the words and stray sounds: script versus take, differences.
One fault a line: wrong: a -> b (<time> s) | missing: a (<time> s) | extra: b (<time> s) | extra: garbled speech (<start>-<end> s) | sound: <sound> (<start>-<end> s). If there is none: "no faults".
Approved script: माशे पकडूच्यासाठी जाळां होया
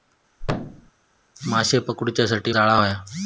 sound: thud (0.4-0.9 s)